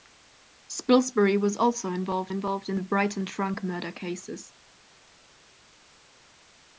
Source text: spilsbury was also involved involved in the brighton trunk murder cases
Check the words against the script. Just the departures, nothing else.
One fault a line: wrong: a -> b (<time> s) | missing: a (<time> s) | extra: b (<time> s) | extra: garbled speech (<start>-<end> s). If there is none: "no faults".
no faults